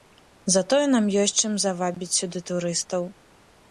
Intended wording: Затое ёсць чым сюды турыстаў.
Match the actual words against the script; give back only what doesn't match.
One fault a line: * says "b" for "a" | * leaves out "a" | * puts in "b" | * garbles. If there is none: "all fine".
* puts in "нам"
* puts in "завабіць"